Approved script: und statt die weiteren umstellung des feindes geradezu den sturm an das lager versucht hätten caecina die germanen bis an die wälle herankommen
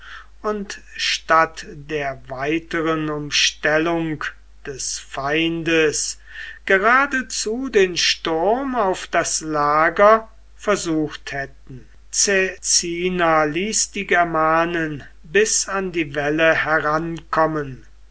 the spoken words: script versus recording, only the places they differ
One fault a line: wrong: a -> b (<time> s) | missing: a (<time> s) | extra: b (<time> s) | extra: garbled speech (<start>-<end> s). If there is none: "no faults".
wrong: die -> der (1.7 s)
wrong: an -> auf (8.8 s)
extra: ließ (13.4 s)